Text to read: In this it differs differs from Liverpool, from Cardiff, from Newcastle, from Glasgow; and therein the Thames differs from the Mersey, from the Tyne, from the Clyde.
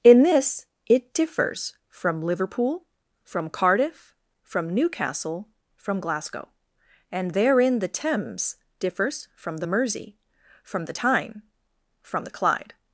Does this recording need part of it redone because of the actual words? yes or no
yes